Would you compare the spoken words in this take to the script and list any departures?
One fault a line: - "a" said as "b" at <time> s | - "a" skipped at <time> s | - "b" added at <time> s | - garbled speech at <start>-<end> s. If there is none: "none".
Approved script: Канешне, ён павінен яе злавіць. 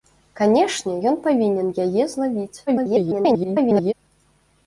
- garbled speech at 2.7-3.9 s